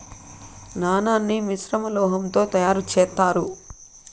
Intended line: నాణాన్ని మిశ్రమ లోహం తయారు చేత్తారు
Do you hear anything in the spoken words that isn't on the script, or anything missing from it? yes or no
yes